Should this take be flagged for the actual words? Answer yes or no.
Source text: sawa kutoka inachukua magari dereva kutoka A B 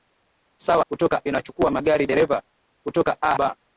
no